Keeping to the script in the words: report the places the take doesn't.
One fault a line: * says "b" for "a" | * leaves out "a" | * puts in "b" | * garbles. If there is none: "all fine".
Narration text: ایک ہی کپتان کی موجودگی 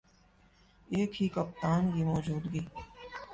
all fine